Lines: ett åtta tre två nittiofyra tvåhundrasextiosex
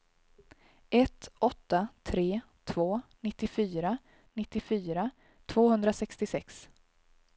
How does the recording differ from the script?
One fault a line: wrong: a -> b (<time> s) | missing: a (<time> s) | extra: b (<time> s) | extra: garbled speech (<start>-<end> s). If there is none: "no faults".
extra: nittiofyra (4.3 s)